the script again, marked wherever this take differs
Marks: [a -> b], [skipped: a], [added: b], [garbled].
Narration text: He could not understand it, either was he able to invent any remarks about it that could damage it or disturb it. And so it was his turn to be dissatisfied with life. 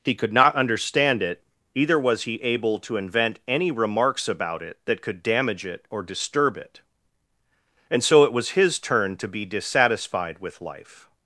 He could not understand it, either was he able to invent any remarks about it that could damage it or disturb it. And so it was his turn to be dissatisfied with life.